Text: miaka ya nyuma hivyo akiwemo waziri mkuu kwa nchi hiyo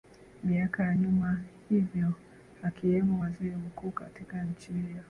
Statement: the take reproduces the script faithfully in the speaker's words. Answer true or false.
false